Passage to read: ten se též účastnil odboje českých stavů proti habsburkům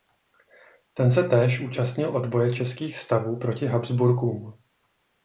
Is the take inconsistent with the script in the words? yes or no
no